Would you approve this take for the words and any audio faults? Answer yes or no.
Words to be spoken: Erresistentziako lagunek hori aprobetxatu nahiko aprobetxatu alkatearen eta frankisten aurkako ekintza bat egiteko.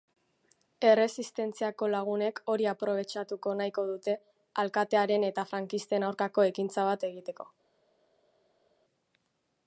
no